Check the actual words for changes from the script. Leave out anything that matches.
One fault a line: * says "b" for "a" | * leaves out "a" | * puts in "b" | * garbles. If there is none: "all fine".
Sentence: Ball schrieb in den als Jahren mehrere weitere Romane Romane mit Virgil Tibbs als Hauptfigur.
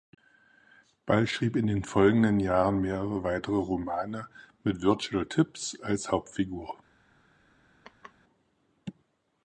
* says "folgenden" for "als"
* leaves out "Romane"